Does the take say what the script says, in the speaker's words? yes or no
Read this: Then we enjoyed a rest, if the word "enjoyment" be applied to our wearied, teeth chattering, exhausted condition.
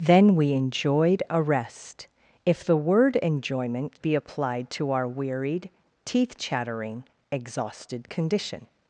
yes